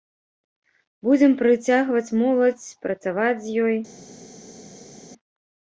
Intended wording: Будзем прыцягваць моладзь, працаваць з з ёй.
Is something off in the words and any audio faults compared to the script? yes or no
yes